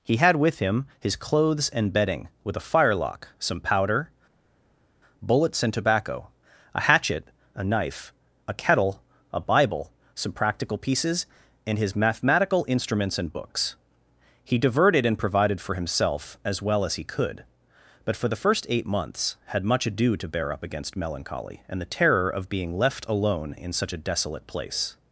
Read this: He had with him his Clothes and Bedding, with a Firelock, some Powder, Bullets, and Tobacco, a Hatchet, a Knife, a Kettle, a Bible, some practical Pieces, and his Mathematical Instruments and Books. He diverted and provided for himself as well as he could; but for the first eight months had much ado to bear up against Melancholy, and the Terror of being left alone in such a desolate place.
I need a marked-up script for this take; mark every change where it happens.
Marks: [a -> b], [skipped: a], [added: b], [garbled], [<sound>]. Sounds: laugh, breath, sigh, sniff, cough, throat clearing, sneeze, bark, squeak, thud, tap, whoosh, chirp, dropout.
He had with him his Clothes and Bedding, with a Firelock, some Powder, Bullets, and Tobacco, a Hatchet, a Knife, a Kettle, a Bible, some practical Pieces, and his Mathematical Instruments and Books. He diverted and provided for himself as well as he could; but for the first eight months had much ado to bear up against Melancholy, and the Terror of being left alone in such a desolate place.